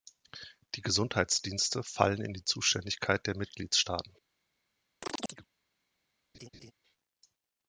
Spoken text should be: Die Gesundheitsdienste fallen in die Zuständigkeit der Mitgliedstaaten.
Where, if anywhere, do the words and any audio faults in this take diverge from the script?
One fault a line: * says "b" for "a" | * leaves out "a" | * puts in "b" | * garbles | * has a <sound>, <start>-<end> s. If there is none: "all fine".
* has a chirp, 5.0-5.5 s
* has a laugh, 6.3-6.7 s